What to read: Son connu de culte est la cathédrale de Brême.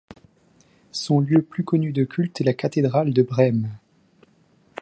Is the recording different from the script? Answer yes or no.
yes